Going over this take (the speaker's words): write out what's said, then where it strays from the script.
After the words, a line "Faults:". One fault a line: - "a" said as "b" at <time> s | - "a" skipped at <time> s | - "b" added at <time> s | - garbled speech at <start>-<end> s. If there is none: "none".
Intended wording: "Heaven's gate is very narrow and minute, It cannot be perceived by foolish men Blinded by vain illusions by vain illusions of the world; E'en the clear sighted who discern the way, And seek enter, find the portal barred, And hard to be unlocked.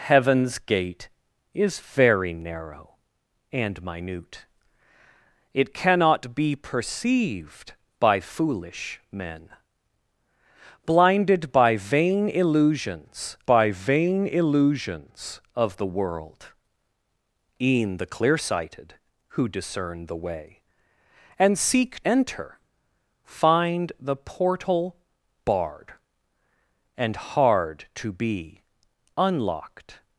"Heaven's gate is very narrow and minute, It cannot be perceived by foolish men Blinded by vain illusions by vain illusions of the world; E'en the clear sighted who discern the way, And seek enter, find the portal barred, And hard to be unlocked.
Faults:
none